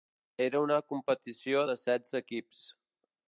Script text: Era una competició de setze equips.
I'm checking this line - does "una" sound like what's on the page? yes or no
yes